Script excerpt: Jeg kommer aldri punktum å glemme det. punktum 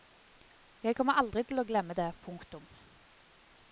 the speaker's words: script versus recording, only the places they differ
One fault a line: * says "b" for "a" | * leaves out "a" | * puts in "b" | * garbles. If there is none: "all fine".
* says "til" for "punktum"